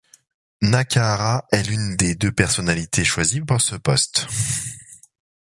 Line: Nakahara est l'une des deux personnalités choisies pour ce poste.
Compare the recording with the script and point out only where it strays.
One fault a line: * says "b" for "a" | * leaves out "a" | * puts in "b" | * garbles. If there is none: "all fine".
all fine